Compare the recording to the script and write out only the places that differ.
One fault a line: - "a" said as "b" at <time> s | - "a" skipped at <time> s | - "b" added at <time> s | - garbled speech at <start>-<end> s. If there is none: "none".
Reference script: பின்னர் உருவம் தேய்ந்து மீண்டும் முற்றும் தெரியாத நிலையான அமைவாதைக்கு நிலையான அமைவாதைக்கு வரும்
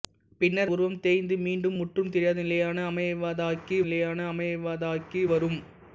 none